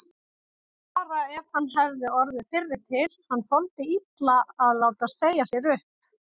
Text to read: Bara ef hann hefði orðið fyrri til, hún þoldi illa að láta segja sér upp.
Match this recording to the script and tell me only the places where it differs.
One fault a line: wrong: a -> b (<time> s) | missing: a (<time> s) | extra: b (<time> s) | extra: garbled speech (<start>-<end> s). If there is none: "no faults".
wrong: hún -> hann (3.3 s)